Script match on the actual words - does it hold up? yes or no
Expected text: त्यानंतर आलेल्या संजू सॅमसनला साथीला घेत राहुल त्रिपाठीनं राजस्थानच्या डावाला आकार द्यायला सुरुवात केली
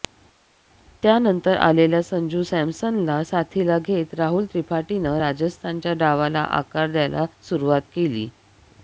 yes